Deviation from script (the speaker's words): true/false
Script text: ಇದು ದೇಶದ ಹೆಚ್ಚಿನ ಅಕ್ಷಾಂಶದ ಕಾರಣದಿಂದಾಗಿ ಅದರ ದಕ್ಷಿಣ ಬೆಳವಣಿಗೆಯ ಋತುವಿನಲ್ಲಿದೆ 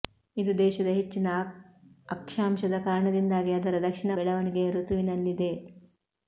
false